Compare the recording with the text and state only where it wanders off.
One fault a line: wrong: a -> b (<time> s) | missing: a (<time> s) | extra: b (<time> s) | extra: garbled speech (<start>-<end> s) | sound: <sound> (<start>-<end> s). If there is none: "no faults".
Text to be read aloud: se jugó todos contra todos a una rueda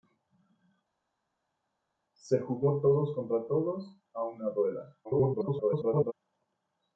extra: garbled speech (5.0-6.1 s)